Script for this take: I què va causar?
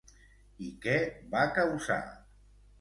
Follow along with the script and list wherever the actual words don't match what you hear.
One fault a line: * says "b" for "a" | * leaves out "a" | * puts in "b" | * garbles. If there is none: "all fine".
all fine